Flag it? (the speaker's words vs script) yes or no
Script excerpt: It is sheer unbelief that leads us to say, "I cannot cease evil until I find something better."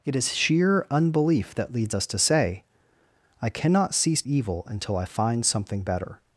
no